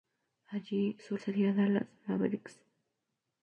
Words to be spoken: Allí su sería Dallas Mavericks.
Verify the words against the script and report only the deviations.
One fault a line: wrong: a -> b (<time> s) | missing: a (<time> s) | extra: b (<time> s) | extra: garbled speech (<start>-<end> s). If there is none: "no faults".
no faults